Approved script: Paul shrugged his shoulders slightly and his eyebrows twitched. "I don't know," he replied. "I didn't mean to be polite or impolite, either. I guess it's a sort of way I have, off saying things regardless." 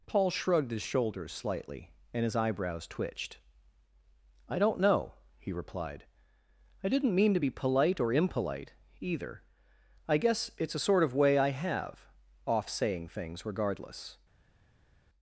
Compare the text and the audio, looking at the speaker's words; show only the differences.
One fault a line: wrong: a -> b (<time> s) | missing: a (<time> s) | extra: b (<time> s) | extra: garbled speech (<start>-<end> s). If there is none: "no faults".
no faults